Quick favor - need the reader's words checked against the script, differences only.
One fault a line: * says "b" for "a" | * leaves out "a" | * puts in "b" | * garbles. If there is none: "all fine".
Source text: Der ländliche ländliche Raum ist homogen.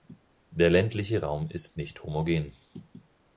* leaves out "ländliche"
* puts in "nicht"